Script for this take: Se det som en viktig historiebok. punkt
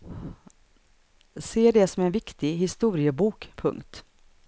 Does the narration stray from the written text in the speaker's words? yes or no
no